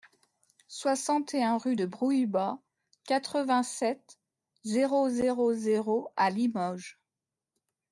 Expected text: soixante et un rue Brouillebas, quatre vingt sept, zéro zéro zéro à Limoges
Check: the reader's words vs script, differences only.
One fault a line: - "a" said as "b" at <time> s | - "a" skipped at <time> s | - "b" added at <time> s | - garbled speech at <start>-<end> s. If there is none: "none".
- "de" added at 1.7 s